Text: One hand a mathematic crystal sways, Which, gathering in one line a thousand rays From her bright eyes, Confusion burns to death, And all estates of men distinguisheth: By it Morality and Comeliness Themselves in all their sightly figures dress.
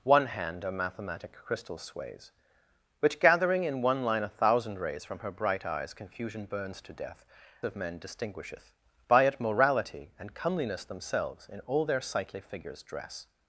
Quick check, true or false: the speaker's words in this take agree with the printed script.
false